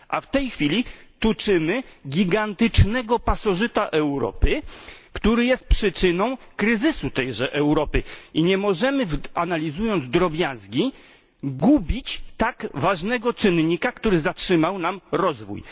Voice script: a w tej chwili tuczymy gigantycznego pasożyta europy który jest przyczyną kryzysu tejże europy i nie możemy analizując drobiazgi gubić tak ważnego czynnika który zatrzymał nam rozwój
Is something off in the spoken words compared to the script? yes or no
no